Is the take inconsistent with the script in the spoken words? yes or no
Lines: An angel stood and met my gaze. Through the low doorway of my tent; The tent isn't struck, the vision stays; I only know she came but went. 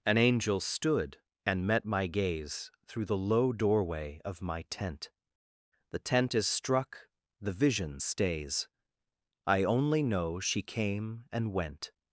yes